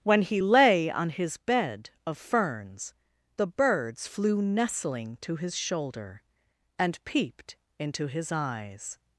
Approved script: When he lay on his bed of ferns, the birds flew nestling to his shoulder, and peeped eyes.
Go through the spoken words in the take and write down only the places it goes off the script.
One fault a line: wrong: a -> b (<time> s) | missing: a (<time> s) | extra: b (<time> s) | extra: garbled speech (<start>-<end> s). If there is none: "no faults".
extra: into his (7.8 s)